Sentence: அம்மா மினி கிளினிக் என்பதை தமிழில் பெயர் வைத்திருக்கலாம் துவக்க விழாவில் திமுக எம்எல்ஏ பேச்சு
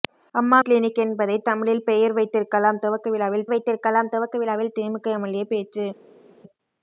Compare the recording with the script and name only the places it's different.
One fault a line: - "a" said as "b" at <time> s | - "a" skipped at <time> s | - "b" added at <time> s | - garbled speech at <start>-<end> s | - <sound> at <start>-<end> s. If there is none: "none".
- "மினி" skipped at 0.6 s
- "வைத்திருக்கலாம் துவக்க விழாவில்" added at 3.5 s